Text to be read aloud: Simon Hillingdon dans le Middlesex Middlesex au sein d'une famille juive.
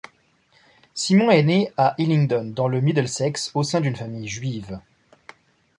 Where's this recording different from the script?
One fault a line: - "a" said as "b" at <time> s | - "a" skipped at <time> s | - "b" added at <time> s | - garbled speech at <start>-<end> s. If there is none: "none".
- "est né à" added at 1.3 s
- "Middlesex" skipped at 3.5 s